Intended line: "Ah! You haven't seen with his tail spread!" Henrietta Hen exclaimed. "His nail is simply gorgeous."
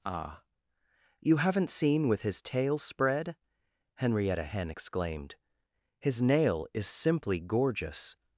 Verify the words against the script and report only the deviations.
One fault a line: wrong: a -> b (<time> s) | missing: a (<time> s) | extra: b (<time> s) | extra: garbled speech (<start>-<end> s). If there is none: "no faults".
no faults